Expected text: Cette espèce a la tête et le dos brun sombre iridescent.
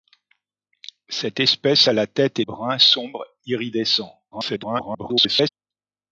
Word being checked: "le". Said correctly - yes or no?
no